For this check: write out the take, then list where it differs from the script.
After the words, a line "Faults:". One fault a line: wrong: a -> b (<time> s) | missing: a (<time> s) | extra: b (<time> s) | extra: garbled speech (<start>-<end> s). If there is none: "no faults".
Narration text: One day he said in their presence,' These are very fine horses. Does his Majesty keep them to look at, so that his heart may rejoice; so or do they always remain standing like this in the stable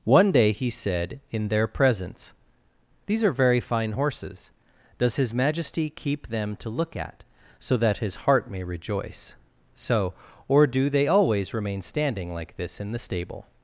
One day he said in their presence,' These are very fine horses. Does his Majesty keep them to look at, so that his heart may rejoice; so or do they always remain standing like this in the stable
Faults:
no faults